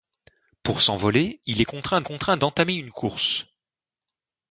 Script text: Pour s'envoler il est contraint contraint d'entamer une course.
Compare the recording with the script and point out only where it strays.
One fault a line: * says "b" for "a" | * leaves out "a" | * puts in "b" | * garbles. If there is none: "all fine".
all fine